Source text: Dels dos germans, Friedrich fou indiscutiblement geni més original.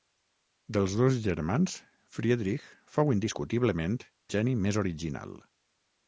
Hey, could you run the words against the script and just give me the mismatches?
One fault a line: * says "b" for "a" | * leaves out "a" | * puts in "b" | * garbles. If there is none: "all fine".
all fine